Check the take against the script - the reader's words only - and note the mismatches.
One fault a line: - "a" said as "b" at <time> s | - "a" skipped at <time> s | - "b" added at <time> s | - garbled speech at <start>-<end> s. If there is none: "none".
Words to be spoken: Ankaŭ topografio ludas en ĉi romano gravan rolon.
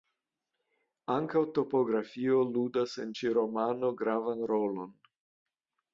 none